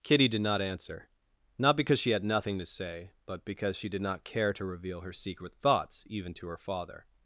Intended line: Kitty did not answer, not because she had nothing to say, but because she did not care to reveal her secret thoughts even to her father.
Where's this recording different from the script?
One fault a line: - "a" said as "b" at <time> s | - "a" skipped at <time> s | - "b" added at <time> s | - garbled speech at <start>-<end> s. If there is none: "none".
none